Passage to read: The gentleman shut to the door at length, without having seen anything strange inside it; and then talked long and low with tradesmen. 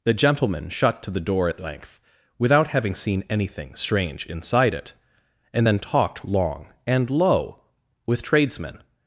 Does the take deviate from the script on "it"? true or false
false